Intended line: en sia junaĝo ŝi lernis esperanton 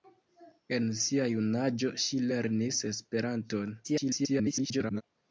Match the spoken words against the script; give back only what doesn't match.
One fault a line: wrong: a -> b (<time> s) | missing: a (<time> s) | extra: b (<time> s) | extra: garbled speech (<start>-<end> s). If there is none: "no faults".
extra: garbled speech (3.8-5.0 s)